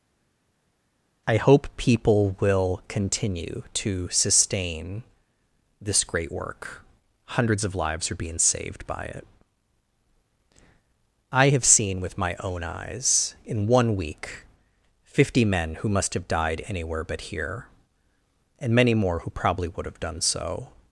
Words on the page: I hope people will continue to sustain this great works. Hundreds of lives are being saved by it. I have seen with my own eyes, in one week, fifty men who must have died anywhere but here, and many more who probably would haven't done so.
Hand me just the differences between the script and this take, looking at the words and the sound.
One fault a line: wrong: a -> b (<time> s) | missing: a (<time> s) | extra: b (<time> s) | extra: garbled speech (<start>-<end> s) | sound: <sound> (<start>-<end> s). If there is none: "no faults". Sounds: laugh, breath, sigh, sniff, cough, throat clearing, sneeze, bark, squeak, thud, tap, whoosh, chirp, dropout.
wrong: works -> work (6.3 s)
wrong: haven't -> have (19.8 s)